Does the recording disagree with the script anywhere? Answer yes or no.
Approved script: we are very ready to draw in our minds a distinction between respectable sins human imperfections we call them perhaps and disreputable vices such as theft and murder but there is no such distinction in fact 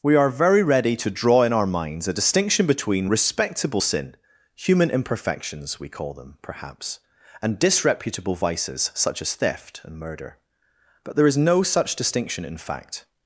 yes